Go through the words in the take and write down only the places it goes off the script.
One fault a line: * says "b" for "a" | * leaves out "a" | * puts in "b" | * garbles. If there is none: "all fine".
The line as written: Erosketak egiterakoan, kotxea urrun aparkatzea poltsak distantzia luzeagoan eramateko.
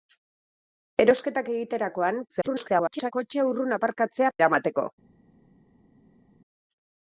* garbles
* leaves out "poltsak distantzia luzeagoan"